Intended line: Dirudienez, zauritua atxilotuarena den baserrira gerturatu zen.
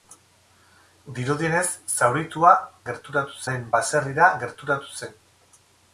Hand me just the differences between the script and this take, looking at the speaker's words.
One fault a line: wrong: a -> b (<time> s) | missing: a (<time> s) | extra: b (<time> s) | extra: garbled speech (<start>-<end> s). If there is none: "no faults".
wrong: atxilotuarena -> gerturatu (2.9 s)